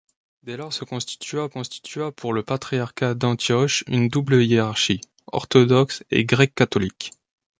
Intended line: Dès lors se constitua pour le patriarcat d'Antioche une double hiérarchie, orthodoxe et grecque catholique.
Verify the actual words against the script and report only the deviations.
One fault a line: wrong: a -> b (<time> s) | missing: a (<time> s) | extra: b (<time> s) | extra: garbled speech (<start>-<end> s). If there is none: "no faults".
extra: constitua (1.5 s)